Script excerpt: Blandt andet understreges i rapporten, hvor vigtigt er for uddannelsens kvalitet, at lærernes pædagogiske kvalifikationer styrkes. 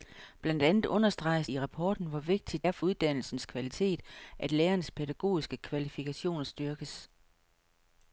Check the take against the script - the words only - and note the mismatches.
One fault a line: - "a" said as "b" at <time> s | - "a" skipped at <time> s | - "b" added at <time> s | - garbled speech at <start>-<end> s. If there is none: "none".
none